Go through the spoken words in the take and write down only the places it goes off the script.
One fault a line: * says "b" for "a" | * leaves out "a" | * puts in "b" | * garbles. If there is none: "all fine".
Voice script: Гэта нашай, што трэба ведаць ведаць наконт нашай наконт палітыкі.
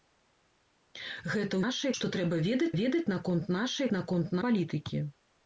all fine